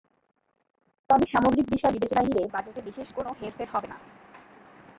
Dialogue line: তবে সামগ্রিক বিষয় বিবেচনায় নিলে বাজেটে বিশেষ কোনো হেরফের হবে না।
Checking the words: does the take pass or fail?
pass